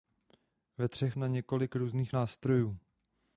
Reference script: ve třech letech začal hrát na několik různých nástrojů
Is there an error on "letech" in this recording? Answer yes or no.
yes